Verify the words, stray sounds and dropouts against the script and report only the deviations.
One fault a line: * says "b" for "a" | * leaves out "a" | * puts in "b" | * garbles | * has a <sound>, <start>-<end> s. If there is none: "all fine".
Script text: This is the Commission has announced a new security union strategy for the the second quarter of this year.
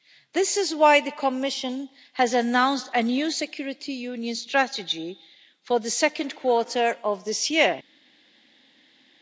* puts in "why"
* leaves out "the"